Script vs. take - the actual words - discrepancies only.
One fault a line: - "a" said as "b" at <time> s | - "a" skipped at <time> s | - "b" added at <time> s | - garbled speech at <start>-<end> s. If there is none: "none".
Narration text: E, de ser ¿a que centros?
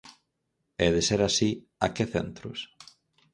- "así" added at 1.3 s